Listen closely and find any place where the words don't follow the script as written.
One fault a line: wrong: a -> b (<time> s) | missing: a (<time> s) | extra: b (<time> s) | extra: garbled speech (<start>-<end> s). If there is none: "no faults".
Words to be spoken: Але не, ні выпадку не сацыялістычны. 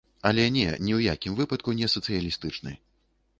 extra: ў якім (1.0 s)